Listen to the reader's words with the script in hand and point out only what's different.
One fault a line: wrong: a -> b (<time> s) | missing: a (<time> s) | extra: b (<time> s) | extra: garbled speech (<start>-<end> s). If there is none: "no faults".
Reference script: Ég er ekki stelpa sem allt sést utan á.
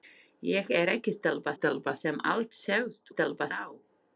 extra: stelpa (1.6 s)
wrong: utan -> stelpa (3.1 s)